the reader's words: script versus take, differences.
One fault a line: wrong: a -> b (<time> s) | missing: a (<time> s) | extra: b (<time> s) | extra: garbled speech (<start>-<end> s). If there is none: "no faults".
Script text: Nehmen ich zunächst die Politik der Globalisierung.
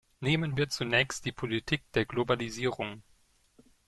wrong: ich -> wir (0.6 s)